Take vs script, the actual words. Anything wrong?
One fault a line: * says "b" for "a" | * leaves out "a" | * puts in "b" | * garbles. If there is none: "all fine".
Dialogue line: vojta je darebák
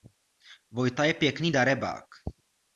* puts in "pěkný"